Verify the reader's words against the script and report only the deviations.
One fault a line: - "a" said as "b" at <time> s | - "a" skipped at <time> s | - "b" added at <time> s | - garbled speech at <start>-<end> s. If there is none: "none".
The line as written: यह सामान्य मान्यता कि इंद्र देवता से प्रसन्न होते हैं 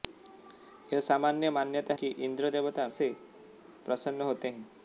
none